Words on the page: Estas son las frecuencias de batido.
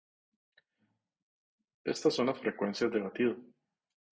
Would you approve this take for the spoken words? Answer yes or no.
yes